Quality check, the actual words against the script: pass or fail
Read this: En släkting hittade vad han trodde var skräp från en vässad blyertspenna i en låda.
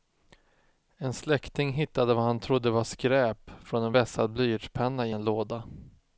pass